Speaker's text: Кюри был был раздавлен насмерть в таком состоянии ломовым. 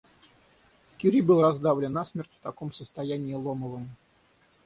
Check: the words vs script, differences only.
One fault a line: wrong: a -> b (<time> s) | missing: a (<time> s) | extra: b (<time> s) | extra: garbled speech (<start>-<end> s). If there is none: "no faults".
missing: был (1.4 s)